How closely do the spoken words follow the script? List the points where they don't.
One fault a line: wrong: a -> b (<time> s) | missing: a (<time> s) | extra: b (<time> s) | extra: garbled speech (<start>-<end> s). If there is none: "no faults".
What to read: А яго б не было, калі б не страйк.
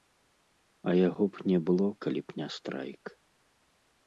no faults